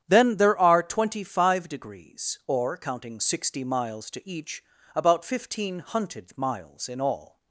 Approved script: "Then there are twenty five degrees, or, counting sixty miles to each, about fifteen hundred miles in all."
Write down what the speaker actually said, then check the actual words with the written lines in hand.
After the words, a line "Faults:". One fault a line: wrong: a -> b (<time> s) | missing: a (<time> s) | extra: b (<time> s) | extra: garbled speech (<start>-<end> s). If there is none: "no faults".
"Then there are twenty five degrees, or, counting sixty miles to each, about fifteen hunted miles in all."
Faults:
wrong: hundred -> hunted (5.8 s)